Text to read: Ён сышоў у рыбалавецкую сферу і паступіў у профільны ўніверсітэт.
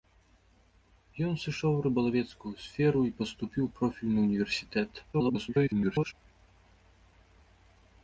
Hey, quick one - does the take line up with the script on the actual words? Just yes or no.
no